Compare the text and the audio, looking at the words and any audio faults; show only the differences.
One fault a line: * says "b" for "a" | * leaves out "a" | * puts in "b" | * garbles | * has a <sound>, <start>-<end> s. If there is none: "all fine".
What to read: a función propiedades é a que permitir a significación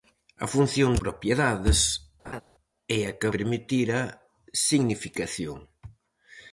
* has a laugh, 2.2-2.4 s